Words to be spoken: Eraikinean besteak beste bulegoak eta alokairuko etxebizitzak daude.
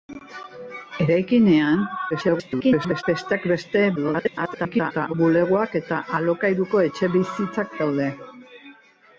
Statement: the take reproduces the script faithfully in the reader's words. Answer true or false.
false